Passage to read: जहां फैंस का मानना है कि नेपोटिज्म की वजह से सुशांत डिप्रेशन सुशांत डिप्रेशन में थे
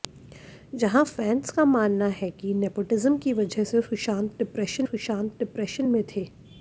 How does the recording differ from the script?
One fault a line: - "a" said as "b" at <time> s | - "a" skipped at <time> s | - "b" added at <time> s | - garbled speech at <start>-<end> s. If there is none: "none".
none